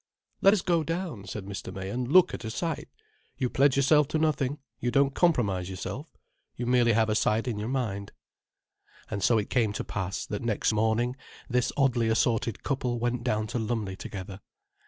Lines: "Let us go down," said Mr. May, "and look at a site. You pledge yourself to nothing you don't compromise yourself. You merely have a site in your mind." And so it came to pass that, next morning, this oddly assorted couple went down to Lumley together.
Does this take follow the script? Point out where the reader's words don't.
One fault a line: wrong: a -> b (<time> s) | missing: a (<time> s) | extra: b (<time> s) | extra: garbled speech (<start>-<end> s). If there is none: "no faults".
no faults